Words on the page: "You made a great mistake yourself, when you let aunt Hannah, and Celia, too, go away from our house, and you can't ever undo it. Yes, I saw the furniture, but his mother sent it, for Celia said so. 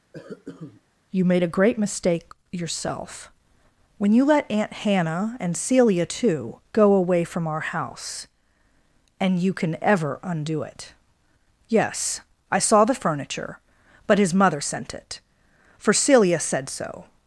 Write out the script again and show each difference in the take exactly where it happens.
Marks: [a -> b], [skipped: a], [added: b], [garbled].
"You made a great mistake yourself, when you let aunt Hannah, and Celia, too, go away from our house, and you [can't -> can] ever undo it. Yes, I saw the furniture, but his mother sent it, for Celia said so.